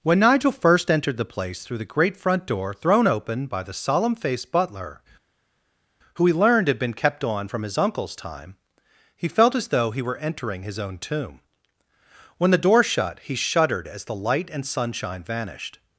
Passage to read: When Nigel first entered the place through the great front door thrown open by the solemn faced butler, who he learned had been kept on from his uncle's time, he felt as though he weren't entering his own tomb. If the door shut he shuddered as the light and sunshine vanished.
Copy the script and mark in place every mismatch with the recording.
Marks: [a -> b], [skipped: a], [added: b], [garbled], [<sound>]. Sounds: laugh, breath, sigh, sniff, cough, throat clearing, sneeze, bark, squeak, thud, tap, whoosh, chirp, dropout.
When Nigel first entered the place through the great front door thrown open by the solemn faced butler, who he learned had been kept on from his uncle's time, he felt as though he [weren't -> were] entering his own tomb. [If -> When] the door shut he shuddered as the light and sunshine vanished.